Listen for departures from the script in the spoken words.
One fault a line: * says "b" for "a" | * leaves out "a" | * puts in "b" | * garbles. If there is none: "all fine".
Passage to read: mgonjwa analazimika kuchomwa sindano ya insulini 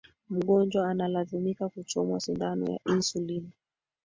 all fine